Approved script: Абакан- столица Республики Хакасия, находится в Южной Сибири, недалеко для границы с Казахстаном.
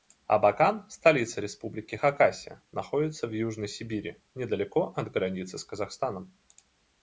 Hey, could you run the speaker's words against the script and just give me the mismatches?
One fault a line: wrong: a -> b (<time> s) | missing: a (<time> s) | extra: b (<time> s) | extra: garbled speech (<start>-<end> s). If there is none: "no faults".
wrong: для -> от (4.9 s)